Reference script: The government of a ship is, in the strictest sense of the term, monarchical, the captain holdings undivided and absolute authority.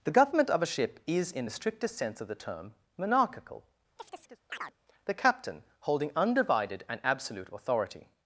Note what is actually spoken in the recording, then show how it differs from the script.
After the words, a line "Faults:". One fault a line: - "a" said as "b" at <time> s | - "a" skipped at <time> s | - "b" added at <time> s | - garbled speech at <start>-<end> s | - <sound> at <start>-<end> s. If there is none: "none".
The government of a ship is, in the strictest sense of the term, monarchical, the captain holding undivided and absolute authority.
Faults:
- chirp at 4.0-4.8 s
- "holdings" said as "holding" at 5.8 s